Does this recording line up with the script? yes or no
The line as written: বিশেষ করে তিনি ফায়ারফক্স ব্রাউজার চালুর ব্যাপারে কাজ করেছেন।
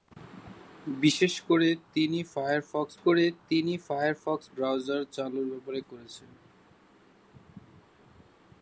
no